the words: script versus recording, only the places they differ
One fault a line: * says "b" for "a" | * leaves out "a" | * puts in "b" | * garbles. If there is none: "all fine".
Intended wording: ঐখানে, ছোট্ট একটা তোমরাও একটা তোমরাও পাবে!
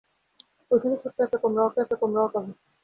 all fine